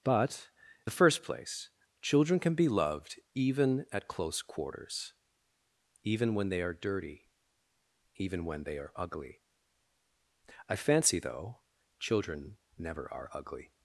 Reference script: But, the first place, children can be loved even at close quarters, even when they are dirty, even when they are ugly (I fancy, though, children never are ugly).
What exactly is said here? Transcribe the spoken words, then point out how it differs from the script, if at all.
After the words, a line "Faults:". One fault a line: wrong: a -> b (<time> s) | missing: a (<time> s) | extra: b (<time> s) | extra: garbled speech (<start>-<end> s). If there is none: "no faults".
But, the first place, children can be loved even at close quarters, even when they are dirty, even when they are ugly (I fancy, though, children never are ugly).
Faults:
no faults